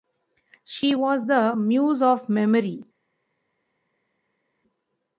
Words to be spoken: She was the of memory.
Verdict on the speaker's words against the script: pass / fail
fail